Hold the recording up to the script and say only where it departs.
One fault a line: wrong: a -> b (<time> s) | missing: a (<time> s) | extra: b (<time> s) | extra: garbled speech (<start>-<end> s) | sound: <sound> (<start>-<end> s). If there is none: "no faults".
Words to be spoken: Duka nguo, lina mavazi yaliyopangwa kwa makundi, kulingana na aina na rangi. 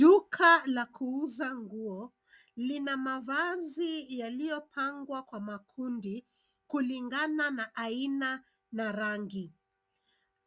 extra: la kuuza (0.7 s)